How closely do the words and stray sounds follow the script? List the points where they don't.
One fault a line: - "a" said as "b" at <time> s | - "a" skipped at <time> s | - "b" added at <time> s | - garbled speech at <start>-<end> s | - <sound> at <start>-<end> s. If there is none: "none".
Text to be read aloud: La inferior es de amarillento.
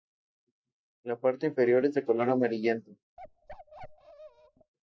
- "parte" added at 1.2 s
- "color" added at 2.1 s
- bark at 3.2-4.7 s